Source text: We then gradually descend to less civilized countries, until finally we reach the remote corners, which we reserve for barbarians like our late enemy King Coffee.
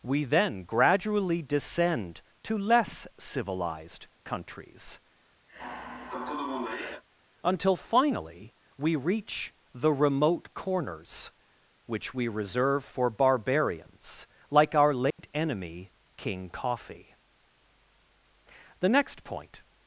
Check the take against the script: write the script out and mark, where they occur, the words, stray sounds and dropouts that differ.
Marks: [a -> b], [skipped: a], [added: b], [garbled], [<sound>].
We then gradually descend to less civilized countries, [sigh] until finally we reach the remote corners, which we reserve for barbarians like our late [dropout] enemy King Coffee. [added: The next point]